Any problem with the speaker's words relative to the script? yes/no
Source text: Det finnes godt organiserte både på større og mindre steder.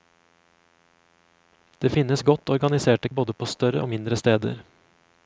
no